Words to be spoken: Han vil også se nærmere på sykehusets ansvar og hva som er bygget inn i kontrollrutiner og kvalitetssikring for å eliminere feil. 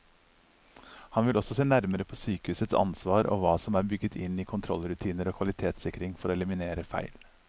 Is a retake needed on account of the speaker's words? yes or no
no